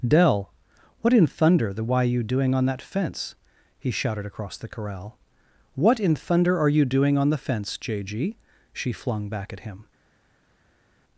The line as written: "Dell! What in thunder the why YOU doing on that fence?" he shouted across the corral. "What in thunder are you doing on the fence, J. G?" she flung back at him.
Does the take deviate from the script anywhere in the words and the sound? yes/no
no